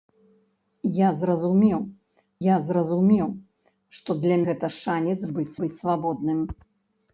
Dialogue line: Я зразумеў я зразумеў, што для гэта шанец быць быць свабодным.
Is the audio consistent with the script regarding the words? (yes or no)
yes